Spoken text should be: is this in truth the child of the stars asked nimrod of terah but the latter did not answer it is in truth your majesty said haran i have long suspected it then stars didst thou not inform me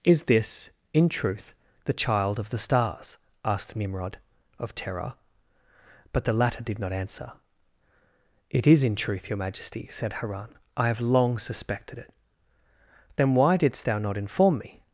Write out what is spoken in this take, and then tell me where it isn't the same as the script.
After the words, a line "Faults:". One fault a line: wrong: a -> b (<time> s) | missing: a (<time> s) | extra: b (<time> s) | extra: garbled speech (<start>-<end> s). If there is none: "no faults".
is this in truth the child of the stars asked nimrod of terah but the latter did not answer it is in truth your majesty said haran i have long suspected it then why didst thou not inform me
Faults:
wrong: stars -> why (13.3 s)